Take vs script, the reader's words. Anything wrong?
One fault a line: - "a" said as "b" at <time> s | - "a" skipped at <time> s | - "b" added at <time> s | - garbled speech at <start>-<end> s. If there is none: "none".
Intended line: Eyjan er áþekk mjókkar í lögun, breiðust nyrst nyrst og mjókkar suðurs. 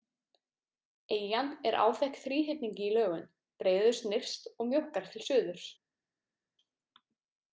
- "mjókkar" said as "þríhyrningi" at 2.2 s
- "nyrst" skipped at 4.5 s
- "til" added at 5.1 s